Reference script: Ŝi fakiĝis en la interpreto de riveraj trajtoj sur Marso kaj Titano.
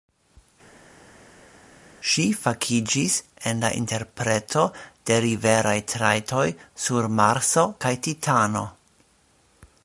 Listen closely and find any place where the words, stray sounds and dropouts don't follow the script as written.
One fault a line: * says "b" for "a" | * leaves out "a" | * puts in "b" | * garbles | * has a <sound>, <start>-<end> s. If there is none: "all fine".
all fine